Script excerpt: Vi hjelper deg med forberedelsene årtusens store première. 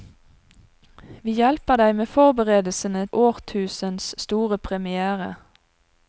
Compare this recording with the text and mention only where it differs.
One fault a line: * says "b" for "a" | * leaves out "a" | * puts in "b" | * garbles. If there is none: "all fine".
all fine